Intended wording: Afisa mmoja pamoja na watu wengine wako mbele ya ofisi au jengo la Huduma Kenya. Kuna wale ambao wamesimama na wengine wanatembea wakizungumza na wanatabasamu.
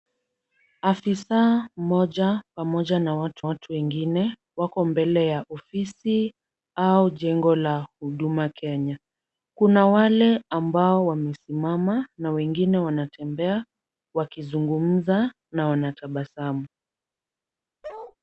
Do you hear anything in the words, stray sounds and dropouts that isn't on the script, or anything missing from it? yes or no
yes